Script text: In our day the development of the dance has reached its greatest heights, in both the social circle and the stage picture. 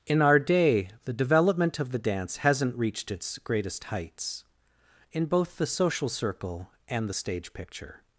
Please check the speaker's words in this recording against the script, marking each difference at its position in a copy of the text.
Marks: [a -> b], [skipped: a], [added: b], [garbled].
In our day the development of the dance [has -> hasn't] reached its greatest heights, in both the social circle and the stage picture.